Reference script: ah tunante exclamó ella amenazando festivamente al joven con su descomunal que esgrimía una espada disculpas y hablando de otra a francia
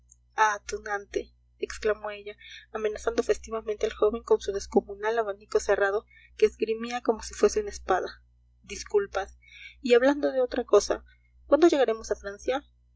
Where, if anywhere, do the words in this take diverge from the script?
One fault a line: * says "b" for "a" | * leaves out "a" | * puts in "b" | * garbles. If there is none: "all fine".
* puts in "abanico cerrado"
* puts in "como si fuese"
* puts in "cosa cuándo llegaremos"